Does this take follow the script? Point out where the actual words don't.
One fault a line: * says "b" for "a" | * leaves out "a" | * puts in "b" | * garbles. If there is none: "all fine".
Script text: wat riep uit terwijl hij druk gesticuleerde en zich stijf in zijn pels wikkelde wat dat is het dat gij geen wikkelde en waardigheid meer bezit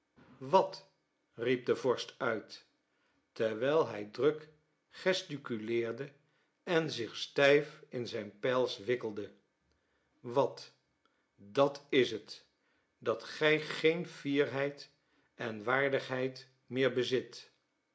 * puts in "de vorst"
* says "fierheid" for "wikkelde"